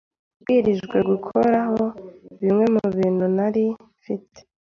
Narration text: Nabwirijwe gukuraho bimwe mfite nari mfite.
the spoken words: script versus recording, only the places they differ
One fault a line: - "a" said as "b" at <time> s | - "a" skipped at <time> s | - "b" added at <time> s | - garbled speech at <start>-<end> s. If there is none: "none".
- "mfite" said as "mubintu" at 2.8 s